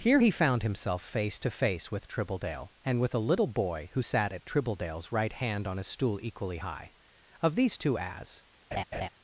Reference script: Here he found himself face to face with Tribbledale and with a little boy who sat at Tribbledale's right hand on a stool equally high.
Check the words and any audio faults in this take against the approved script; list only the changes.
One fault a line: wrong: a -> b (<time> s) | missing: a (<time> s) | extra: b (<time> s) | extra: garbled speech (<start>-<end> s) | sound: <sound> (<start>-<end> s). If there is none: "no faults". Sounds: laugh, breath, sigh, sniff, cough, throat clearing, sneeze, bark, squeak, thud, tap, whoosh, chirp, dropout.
extra: Of these two as (7.4 s)
sound: laugh (8.7-9.1 s)